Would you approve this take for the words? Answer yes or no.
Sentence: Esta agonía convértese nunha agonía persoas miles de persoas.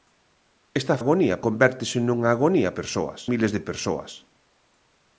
yes